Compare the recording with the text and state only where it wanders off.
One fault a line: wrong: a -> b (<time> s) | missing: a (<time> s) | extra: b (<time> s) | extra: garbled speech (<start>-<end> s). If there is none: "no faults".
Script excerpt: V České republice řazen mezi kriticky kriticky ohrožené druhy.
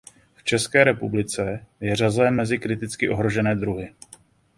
extra: je (1.8 s)
missing: kriticky (3.1 s)